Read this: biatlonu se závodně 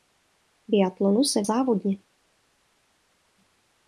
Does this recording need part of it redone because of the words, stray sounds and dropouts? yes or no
no